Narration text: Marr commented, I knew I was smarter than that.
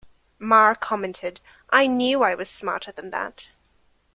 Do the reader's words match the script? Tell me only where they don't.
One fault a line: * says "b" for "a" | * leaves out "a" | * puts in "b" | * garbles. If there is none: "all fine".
all fine